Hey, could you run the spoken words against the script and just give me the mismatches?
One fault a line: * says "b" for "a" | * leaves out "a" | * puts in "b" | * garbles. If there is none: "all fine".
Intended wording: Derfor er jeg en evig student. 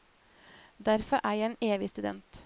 all fine